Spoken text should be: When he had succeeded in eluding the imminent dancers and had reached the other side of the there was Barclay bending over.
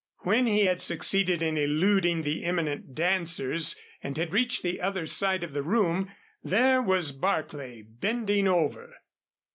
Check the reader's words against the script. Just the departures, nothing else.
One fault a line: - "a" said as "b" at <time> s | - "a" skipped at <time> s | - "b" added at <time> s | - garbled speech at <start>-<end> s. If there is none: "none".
- "room" added at 5.6 s